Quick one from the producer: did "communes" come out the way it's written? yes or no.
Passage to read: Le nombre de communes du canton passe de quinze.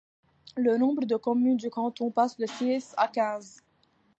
yes